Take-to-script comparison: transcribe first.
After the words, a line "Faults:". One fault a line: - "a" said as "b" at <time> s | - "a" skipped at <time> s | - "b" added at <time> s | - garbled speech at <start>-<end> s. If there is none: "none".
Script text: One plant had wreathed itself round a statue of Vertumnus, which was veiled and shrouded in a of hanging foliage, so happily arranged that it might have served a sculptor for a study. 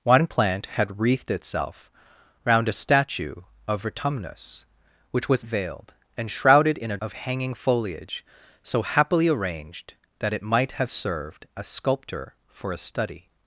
One plant had wreathed itself round a statue of Vertumnus, which was veiled and shrouded in a of hanging foliage, so happily arranged that it might have served a sculptor for a study.
Faults:
none